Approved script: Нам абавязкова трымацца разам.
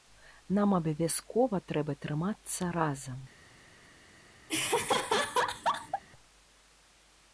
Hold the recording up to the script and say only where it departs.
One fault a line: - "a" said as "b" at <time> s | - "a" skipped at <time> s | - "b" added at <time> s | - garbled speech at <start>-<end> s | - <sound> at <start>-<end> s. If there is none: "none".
- "трэба" added at 1.7 s
- laugh at 4.5-6.0 s